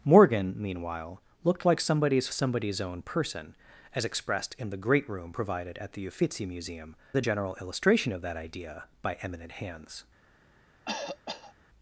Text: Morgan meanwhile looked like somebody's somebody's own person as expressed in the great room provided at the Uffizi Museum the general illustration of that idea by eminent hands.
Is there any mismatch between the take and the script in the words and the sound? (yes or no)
yes